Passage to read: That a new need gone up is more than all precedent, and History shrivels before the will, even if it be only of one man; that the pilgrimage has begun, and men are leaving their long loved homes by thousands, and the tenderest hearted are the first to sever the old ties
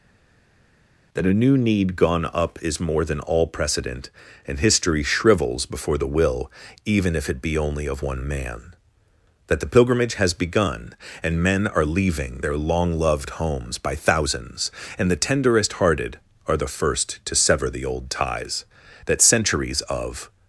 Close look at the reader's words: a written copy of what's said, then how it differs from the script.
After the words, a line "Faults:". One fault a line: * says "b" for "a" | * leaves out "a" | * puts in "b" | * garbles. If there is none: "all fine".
That a new need gone up is more than all precedent, and History shrivels before the will, even if it be only of one man; that the pilgrimage has begun, and men are leaving their long loved homes by thousands, and the tenderest hearted are the first to sever the old ties That centuries of
Faults:
* puts in "That centuries of"